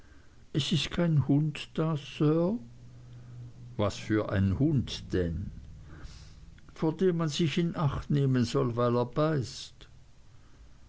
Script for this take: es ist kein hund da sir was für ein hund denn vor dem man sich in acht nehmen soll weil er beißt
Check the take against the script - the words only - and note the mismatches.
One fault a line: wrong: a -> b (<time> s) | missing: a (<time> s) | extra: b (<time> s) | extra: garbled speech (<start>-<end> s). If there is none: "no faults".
no faults